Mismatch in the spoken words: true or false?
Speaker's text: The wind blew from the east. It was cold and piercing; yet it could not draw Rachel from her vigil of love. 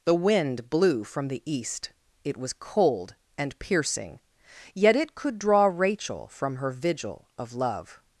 true